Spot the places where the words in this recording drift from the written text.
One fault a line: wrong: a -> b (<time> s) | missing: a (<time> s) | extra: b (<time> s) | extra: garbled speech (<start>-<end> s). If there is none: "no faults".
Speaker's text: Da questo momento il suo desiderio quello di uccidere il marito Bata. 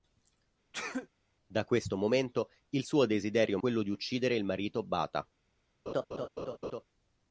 no faults